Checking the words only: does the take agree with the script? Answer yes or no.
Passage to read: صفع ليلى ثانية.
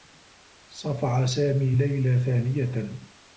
no